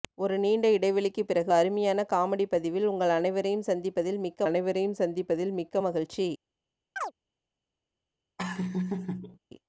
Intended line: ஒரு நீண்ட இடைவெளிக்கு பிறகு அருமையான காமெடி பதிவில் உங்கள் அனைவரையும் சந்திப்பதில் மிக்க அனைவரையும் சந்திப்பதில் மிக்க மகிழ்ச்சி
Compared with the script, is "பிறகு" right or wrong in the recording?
right